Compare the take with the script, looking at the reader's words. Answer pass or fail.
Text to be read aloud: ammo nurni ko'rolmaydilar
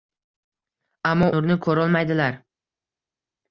pass